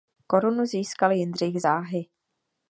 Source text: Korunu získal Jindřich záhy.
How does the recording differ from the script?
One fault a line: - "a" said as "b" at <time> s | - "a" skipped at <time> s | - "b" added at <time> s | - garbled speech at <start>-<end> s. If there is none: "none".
none